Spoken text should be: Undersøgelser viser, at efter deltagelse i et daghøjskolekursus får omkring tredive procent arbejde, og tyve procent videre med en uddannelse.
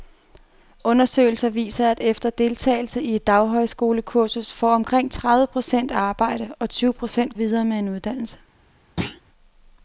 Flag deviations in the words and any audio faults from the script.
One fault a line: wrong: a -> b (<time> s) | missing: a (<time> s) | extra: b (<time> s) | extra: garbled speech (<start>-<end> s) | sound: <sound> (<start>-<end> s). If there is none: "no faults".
sound: thud (9.0-9.2 s)